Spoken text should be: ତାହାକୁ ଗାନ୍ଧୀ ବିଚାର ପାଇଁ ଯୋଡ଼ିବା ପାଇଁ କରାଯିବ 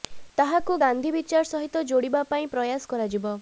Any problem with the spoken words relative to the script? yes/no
yes